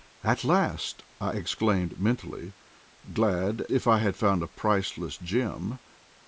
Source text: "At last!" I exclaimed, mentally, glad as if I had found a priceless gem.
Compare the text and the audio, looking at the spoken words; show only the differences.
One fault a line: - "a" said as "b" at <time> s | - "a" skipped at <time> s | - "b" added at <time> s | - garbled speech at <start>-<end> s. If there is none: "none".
- "as" skipped at 3.6 s